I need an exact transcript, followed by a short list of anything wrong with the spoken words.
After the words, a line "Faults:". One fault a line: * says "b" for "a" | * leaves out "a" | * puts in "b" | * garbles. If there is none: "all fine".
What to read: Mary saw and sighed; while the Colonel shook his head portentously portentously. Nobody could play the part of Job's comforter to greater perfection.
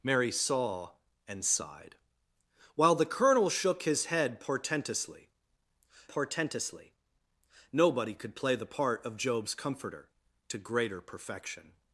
Mary saw and sighed; while the Colonel shook his head portentously portentously. Nobody could play the part of Job's comforter to greater perfection.
Faults:
all fine